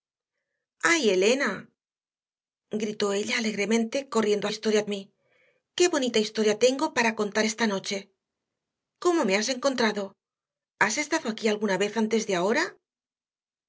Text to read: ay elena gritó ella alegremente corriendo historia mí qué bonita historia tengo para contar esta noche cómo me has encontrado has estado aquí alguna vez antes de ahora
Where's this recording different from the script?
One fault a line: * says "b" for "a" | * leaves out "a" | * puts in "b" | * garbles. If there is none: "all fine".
all fine